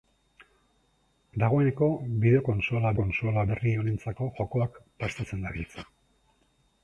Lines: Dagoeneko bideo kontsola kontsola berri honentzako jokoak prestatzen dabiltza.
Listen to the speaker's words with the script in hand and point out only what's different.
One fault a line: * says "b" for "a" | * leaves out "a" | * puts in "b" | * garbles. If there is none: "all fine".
all fine